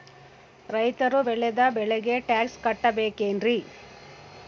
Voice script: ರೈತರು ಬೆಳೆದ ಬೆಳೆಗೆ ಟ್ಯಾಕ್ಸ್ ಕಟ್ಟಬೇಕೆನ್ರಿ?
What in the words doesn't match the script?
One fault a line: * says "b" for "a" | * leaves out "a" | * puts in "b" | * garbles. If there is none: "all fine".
all fine